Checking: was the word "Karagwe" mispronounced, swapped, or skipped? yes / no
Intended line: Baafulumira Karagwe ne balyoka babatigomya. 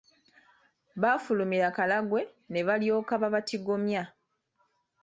no